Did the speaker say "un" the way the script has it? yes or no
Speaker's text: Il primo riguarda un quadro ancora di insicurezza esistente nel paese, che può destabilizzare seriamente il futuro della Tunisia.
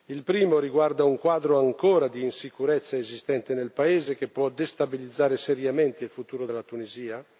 yes